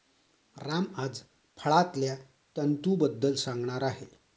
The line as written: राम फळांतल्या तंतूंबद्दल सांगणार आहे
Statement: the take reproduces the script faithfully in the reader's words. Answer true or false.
false